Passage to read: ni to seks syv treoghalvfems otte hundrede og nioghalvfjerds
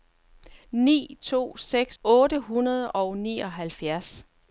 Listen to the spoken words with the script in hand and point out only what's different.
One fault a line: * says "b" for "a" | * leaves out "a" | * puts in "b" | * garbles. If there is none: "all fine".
* leaves out "syv treoghalvfems"